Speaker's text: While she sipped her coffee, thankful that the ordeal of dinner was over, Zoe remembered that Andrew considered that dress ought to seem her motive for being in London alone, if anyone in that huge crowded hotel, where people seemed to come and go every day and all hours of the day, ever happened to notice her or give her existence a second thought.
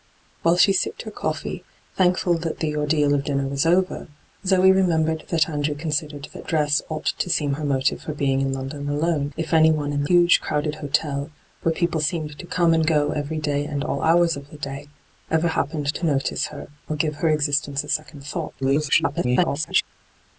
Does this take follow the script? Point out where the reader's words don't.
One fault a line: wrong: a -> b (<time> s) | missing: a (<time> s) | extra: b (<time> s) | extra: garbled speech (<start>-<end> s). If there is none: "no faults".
missing: that (10.0 s)
extra: garbled speech (18.6-19.8 s)